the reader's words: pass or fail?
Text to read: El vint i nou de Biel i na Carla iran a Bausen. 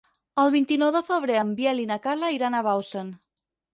fail